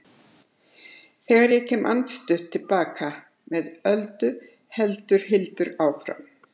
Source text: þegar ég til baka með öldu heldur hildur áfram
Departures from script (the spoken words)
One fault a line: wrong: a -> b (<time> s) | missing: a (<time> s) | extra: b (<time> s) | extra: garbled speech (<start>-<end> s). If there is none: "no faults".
extra: kem andstutt (1.7 s)